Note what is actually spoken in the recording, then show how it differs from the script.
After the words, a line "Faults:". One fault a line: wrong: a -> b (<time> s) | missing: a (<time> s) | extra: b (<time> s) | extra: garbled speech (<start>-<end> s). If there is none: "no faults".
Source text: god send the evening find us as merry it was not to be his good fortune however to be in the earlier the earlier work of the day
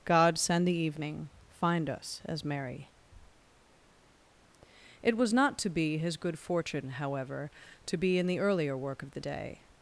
god send the evening find us as merry it was not to be his good fortune however to be in the earlier work of the day
Faults:
missing: the earlier (8.8 s)